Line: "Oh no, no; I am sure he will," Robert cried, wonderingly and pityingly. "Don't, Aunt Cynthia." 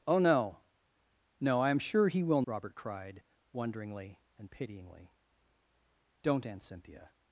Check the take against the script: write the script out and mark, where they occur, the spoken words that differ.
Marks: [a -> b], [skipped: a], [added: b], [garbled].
"Oh no, no; I am sure he will," Robert cried, wonderingly and pityingly. "Don't, Aunt Cynthia."